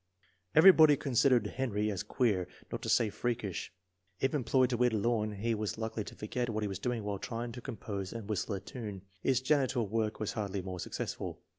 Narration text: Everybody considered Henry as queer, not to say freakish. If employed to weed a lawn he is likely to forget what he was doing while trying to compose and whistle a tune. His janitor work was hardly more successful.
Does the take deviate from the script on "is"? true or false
true